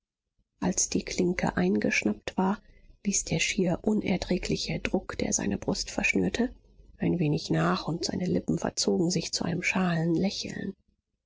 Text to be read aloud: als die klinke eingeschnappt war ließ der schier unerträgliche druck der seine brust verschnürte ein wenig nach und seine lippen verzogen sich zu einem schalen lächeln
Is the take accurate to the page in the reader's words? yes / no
yes